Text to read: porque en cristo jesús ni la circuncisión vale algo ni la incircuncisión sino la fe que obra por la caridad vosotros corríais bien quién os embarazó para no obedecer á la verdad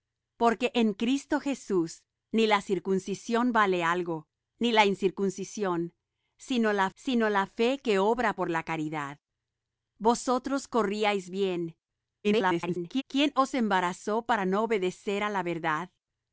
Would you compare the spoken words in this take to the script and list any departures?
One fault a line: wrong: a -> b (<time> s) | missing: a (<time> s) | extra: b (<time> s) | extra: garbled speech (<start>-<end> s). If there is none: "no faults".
extra: sino la (6.9 s)
extra: garbled speech (12.2-13.0 s)